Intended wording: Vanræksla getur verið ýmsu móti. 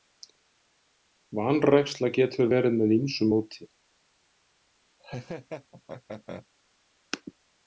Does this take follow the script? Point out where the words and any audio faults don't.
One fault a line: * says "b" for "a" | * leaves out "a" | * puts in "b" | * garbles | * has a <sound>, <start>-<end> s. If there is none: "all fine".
* puts in "með"
* has a laugh, 5.0-6.5 s